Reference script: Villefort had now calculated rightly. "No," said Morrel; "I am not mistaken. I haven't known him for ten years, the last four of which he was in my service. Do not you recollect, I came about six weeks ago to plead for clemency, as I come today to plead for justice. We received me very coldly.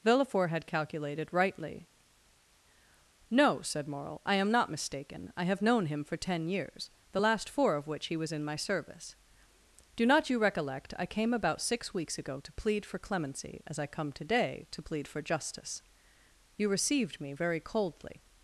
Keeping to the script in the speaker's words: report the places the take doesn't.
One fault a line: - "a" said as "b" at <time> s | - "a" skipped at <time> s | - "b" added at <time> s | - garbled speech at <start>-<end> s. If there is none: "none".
- "now" skipped at 0.7 s
- "haven't" said as "have" at 5.4 s
- "We" said as "You" at 16.6 s